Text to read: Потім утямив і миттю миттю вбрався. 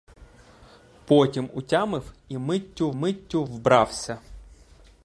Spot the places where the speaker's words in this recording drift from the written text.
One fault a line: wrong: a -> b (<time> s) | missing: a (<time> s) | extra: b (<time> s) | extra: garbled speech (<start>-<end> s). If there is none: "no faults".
no faults